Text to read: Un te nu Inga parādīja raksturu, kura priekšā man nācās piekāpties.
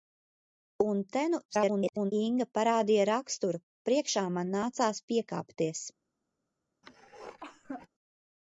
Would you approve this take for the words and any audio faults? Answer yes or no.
no